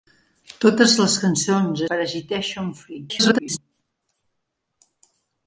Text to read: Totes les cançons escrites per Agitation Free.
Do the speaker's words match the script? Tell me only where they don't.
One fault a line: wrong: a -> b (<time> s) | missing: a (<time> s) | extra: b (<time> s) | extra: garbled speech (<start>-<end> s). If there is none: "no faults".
missing: escrites (1.8 s)
extra: garbled speech (3.1-3.6 s)